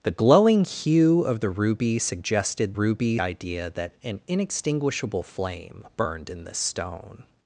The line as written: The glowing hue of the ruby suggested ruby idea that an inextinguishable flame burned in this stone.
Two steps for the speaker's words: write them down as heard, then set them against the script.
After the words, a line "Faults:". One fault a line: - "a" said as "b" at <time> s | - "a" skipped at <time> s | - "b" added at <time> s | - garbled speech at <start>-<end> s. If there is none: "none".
The glowing hue of the ruby suggested ruby idea that an inextinguishable flame burned in this stone.
Faults:
none